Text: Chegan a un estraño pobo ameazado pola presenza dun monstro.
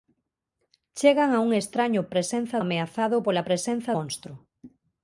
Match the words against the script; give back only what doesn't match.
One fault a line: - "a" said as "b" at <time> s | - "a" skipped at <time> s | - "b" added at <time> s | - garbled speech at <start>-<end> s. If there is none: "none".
- "pobo" said as "presenza" at 2.1 s
- "dun" skipped at 3.9 s